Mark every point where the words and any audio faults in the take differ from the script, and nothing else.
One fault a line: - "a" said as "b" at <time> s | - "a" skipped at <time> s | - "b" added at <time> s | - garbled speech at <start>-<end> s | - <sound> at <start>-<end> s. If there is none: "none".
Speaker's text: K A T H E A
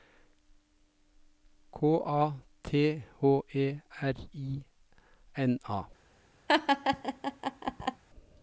- "R I N" added at 4.0 s
- laugh at 6.5-8.0 s